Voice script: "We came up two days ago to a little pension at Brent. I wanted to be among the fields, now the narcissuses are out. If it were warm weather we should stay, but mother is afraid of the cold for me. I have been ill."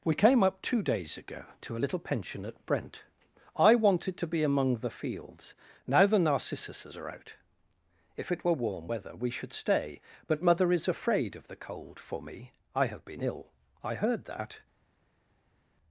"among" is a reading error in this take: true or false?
false